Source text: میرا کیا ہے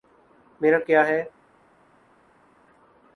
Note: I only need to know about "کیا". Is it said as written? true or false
true